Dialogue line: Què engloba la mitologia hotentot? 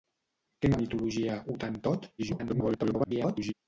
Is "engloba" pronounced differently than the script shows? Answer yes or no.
yes